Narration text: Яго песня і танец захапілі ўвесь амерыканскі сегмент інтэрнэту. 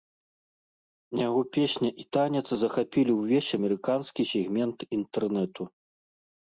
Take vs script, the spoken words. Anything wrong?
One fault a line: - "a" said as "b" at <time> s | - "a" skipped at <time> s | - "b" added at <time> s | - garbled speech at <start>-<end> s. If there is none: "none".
none